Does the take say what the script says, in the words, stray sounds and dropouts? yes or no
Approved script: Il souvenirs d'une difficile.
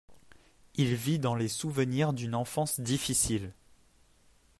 no